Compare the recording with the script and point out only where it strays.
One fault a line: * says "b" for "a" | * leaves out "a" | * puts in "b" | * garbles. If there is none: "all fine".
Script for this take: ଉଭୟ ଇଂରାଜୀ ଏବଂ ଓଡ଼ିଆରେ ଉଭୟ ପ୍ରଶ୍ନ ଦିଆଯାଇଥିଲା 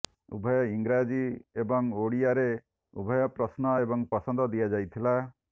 * puts in "ଏବଂ ପସନ୍ଦ"